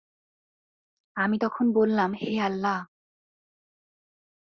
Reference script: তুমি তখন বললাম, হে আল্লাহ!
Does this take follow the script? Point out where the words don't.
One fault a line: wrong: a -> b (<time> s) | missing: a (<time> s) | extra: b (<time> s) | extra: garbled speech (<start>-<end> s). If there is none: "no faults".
wrong: তুমি -> আমি (1.1 s)